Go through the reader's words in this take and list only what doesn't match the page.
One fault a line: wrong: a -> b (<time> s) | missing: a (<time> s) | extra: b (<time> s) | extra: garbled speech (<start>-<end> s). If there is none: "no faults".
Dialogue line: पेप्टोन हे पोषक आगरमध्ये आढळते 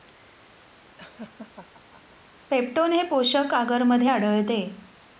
no faults